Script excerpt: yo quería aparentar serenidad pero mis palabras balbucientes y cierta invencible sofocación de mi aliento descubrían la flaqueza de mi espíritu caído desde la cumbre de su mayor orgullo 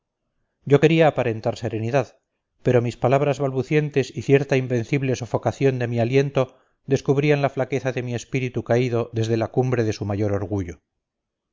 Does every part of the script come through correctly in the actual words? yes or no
yes